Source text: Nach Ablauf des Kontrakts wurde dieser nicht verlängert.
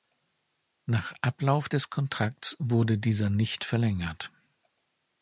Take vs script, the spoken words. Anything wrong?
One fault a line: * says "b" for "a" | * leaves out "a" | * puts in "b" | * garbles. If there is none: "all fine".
all fine